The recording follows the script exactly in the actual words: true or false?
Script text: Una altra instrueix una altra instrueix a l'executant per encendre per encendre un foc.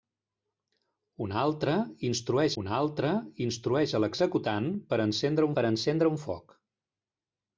true